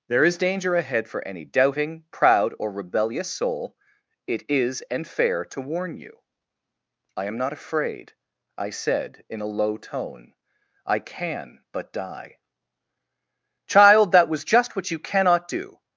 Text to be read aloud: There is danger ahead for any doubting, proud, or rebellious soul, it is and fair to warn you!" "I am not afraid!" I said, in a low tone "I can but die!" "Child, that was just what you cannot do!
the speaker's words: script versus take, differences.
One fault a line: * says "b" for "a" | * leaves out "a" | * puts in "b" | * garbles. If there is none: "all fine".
all fine